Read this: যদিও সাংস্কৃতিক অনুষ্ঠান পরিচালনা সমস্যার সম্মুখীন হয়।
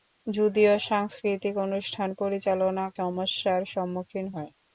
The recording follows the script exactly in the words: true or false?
true